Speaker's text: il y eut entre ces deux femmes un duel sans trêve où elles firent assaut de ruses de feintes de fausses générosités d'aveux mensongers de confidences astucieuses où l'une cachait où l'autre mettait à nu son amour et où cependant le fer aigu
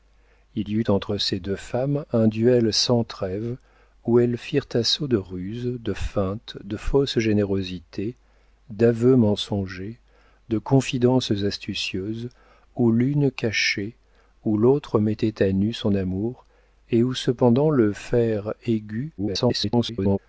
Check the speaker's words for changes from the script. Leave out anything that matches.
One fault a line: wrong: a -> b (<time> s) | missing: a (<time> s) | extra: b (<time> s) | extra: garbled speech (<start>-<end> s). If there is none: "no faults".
extra: garbled speech (19.2-20.2 s)